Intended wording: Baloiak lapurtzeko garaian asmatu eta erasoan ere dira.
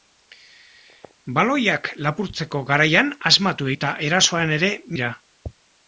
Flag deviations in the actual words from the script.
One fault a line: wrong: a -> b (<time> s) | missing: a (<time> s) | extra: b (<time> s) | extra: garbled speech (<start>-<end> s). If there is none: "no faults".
no faults